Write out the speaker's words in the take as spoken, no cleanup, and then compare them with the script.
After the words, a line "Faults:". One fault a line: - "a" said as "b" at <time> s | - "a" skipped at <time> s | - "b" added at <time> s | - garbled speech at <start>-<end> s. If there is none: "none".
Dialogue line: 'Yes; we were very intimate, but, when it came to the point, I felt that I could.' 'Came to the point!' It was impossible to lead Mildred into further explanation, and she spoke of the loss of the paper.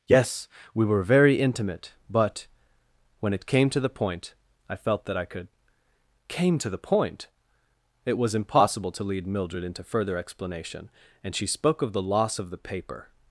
'Yes; we were very intimate, but, when it came to the point, I felt that I could.' 'Came to the point!' It was impossible to lead Mildred into further explanation, and she spoke of the loss of the paper.
Faults:
none